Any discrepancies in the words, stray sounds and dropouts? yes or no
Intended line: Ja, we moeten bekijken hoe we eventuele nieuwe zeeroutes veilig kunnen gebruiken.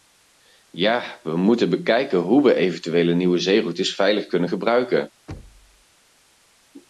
yes